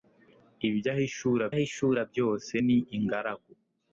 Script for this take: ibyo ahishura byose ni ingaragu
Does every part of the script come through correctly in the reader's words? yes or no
no